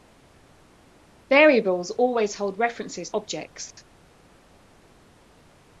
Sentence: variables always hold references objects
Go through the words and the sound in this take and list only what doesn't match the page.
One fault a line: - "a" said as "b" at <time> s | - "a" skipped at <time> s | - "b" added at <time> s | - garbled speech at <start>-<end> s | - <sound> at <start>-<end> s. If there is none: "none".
none